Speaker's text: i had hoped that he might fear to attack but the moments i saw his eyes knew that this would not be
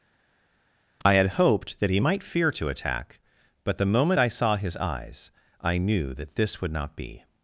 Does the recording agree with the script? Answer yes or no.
no